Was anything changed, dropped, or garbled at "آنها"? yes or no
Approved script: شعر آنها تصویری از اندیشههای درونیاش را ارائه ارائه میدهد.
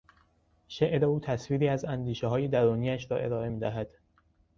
yes